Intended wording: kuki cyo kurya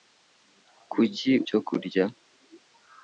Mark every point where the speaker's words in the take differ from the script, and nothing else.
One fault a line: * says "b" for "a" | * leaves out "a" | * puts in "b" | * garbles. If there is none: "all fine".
all fine